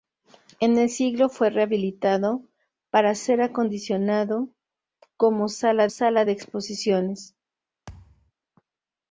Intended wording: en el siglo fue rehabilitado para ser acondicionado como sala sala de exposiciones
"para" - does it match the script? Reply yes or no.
yes